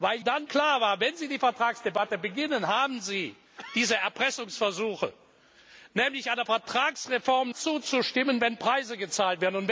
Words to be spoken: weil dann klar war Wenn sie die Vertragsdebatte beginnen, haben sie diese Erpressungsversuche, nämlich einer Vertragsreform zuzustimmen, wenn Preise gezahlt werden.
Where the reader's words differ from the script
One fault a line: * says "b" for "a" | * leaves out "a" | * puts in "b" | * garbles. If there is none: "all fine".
all fine